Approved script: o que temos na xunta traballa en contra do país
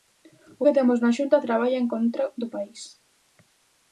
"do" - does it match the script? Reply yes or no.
yes